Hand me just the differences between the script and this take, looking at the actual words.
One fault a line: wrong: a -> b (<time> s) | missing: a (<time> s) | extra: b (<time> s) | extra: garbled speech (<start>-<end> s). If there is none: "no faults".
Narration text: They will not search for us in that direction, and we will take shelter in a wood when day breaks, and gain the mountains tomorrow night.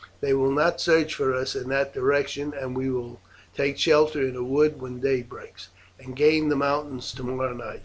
no faults